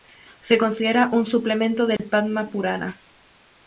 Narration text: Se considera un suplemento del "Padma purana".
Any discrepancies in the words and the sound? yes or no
yes